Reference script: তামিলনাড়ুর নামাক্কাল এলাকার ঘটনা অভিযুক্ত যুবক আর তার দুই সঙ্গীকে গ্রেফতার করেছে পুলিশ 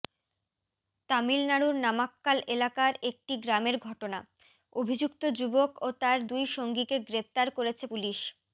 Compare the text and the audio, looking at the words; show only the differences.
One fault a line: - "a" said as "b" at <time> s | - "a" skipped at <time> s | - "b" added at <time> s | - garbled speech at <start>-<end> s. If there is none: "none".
- "একটি গ্রামের" added at 3.1 s
- "আর" said as "ও" at 5.8 s